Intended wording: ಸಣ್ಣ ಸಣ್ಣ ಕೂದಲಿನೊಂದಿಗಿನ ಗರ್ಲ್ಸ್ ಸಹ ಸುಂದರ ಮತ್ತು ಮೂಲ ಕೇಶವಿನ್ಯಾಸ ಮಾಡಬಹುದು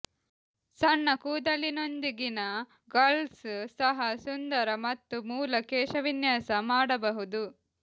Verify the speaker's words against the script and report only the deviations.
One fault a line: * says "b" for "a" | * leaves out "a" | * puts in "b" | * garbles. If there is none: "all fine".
* leaves out "ಸಣ್ಣ"